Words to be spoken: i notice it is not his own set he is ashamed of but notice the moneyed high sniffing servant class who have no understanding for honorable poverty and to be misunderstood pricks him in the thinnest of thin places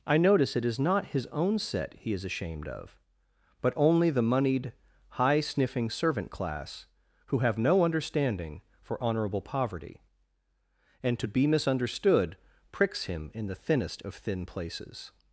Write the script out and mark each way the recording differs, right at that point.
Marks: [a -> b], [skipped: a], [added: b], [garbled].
i notice it is not his own set he is ashamed of but [notice -> only] the moneyed high sniffing servant class who have no understanding for honorable poverty and to be misunderstood pricks him in the thinnest of thin places